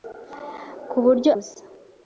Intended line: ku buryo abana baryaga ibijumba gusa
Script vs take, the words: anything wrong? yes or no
yes